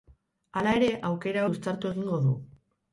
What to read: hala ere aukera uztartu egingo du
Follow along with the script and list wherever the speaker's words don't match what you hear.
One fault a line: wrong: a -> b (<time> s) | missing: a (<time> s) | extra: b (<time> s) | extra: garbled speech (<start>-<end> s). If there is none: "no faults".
no faults